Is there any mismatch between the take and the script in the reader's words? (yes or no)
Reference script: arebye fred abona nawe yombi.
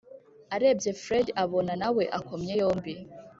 yes